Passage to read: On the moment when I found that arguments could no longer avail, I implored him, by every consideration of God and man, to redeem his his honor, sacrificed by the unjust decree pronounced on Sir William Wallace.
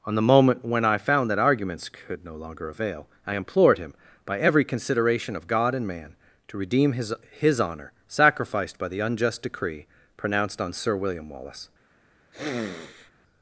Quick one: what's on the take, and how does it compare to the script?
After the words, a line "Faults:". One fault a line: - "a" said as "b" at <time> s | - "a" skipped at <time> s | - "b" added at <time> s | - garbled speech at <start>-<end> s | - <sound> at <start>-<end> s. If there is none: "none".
On the moment when I found that arguments could no longer avail, I implored him, by every consideration of God and man, to redeem his his honor, sacrificed by the unjust decree pronounced on Sir William Wallace.
Faults:
- sniff at 12.3-13.1 s